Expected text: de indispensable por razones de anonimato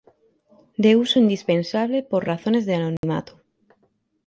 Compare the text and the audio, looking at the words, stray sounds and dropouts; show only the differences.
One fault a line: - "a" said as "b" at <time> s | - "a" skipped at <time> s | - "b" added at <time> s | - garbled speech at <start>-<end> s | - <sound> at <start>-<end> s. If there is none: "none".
- "uso" added at 0.9 s
- dropout at 3.0-3.0 s